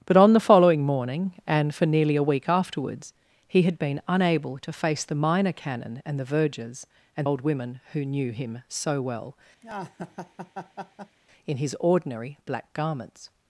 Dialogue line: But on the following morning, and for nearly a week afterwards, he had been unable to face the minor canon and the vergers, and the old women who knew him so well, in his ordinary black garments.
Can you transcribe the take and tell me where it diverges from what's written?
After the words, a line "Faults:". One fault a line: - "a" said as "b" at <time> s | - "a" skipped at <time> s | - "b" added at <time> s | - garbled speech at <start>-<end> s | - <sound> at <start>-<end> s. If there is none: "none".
But on the following morning, and for nearly a week afterwards, he had been unable to face the minor canon and the vergers, and old women who knew him so well, in his ordinary black garments.
Faults:
- "the" skipped at 7.3 s
- laugh at 9.6-11.2 s